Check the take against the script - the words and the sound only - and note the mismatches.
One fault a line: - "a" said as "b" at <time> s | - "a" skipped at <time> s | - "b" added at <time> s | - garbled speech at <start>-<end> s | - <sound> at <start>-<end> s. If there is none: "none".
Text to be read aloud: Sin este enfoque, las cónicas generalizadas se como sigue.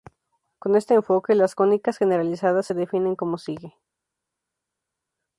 - "Sin" said as "Con" at 0.6 s
- "definen" added at 2.7 s